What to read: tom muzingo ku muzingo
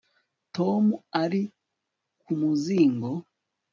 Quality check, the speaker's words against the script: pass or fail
fail